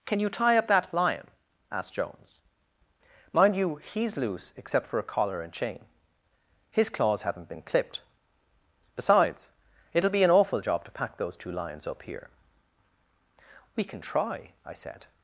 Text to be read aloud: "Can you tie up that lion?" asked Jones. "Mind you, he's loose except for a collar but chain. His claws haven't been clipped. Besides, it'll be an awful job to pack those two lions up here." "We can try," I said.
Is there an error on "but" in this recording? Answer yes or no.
yes